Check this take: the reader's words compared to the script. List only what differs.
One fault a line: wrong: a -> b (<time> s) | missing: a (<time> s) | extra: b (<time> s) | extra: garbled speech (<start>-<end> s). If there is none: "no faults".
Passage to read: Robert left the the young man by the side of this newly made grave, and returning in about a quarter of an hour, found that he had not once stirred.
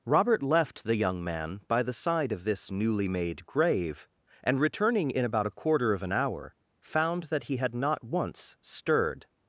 missing: the (0.9 s)